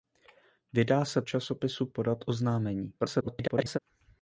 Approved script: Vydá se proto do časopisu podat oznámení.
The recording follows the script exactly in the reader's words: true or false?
false